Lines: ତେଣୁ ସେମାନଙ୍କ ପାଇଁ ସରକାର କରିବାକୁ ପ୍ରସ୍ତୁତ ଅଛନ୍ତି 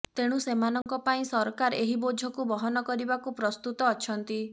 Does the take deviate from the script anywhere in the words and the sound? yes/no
yes